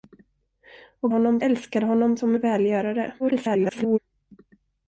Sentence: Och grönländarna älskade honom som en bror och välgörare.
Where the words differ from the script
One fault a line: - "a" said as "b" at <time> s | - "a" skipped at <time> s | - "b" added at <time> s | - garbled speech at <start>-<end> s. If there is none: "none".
- "grönländarna" said as "honom" at 1.1 s
- "en bror" skipped at 2.3 s
- garbled speech at 3.2-4.0 s